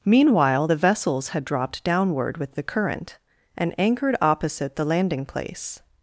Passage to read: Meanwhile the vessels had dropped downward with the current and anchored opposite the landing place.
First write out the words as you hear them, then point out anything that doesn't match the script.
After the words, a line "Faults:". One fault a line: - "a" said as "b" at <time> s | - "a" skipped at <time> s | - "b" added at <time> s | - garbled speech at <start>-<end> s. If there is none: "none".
Meanwhile the vessels had dropped downward with the current and anchored opposite the landing place.
Faults:
none